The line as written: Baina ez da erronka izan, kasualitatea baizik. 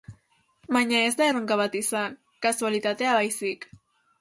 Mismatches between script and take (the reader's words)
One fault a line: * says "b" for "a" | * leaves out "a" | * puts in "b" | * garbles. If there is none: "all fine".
* puts in "bat"